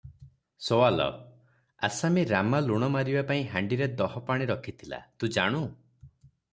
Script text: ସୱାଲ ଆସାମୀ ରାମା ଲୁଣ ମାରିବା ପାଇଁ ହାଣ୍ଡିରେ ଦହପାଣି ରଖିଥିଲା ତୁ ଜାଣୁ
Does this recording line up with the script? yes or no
yes